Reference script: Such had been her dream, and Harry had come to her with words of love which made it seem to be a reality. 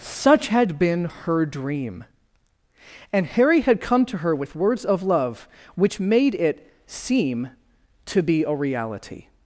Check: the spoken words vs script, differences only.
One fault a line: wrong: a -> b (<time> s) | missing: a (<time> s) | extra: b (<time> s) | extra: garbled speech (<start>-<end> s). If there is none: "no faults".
no faults